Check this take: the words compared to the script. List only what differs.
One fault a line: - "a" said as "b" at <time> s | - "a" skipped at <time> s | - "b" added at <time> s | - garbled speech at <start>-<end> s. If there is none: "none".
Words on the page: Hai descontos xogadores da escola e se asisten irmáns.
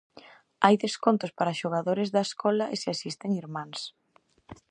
- "para" added at 1.4 s